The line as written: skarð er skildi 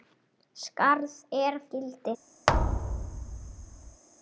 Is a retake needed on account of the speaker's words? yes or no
no